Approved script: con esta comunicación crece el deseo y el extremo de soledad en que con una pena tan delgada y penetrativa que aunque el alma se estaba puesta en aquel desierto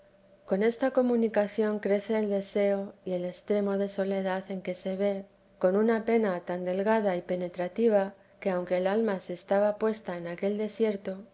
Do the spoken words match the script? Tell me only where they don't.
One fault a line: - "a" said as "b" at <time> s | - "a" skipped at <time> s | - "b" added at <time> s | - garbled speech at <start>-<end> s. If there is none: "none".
- "se ve" added at 4.7 s